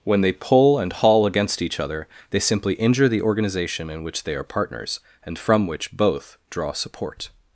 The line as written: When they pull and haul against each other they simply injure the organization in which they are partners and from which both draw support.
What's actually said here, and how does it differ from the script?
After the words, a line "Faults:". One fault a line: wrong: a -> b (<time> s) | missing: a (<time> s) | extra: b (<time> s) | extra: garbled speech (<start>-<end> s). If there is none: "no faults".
When they pull and haul against each other they simply injure the organization in which they are partners and from which both draw support.
Faults:
no faults